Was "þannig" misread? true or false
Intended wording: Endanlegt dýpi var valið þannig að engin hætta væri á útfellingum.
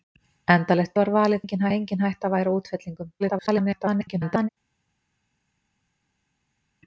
true